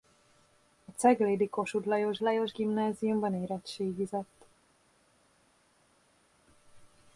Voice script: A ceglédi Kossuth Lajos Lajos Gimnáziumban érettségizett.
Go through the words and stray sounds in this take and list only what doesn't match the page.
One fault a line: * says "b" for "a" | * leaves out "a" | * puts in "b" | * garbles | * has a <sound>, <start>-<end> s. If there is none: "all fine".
all fine